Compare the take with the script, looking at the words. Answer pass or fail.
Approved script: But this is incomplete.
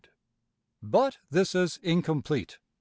pass